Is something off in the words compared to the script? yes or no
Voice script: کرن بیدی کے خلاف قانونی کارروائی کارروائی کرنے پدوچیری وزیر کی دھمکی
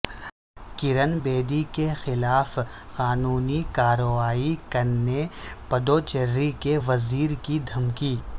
yes